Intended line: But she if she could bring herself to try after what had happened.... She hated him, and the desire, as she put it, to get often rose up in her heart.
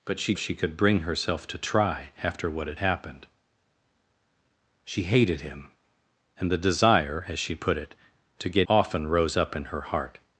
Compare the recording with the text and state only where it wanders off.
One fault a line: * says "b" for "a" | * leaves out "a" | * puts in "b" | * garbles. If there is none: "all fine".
all fine